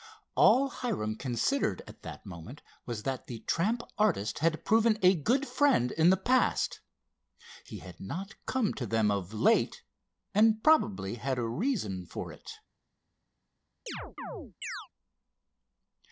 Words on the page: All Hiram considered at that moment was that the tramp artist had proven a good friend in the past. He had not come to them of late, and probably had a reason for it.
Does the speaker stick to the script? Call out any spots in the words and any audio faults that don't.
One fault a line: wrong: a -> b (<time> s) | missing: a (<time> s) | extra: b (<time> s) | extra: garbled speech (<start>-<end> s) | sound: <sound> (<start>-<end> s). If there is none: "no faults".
sound: chirp (13.9-14.9 s)